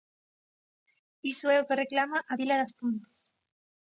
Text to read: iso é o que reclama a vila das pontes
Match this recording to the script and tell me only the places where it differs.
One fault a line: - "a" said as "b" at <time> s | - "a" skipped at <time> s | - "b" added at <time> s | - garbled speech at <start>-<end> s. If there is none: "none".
none